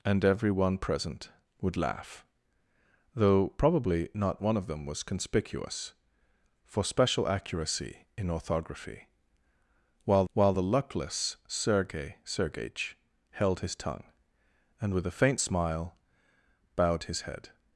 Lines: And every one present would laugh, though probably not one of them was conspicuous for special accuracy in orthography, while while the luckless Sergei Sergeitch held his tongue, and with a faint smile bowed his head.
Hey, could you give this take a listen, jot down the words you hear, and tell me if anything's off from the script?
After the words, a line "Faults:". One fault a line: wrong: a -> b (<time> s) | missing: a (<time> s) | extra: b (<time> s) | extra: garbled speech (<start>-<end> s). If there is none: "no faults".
And every one present would laugh, though probably not one of them was conspicuous for special accuracy in orthography, while while the luckless Sergei Sergeitch held his tongue, and with a faint smile bowed his head.
Faults:
no faults